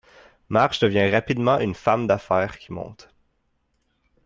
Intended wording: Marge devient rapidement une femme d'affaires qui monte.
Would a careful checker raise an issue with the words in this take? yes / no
no